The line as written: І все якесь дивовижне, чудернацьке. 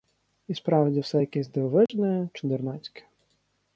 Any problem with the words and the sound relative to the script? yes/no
yes